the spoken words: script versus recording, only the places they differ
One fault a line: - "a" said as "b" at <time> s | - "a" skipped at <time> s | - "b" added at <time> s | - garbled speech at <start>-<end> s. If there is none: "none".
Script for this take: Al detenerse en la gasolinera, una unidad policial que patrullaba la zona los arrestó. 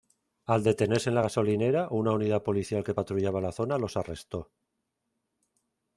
none